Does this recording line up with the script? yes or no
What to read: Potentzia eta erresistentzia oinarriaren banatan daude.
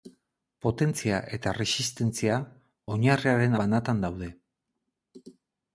yes